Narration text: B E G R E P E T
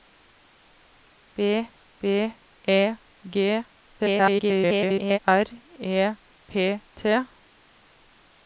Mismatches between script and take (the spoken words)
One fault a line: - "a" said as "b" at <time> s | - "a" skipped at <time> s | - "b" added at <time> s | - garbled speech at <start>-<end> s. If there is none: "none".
- "b" added at 2.0 s
- garbled speech at 4.0-5.2 s
- "E" skipped at 6.8 s